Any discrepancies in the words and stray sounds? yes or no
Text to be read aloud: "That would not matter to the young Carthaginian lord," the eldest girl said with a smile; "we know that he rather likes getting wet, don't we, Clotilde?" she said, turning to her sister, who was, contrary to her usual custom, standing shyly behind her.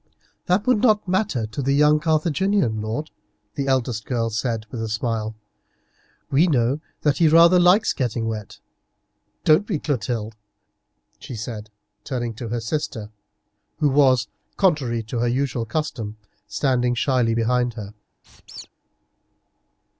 yes